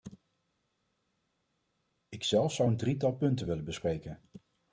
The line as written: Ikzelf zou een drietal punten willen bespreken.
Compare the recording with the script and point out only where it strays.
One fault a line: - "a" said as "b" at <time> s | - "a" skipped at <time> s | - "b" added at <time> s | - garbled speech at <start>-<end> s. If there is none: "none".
none